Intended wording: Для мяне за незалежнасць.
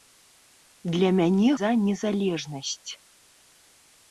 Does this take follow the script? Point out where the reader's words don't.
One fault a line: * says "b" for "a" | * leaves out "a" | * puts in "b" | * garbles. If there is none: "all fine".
all fine